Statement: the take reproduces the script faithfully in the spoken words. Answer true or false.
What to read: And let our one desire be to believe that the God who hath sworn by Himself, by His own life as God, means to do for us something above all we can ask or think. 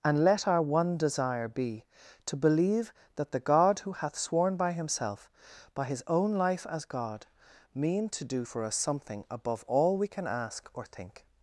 false